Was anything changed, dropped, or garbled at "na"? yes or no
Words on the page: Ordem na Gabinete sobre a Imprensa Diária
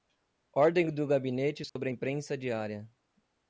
yes